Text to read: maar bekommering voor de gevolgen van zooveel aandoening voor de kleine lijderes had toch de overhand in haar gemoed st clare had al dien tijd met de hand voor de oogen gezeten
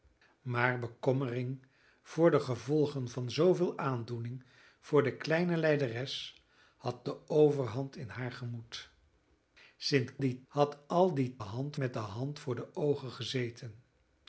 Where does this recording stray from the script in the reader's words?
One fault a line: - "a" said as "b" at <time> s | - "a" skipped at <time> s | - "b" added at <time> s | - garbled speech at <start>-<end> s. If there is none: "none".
- "toch" skipped at 7.0 s
- "clare" said as "dien" at 10.2 s
- "tijd" said as "hand" at 11.4 s